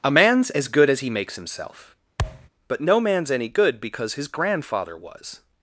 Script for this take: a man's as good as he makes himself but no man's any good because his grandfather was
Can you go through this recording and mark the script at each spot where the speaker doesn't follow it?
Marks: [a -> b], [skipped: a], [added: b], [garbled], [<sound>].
a man's as good as he makes himself [thud] but no man's any good because his grandfather was